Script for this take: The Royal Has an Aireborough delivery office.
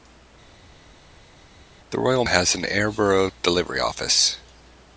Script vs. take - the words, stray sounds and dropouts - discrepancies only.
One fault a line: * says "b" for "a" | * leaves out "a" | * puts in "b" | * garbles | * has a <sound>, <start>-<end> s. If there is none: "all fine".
all fine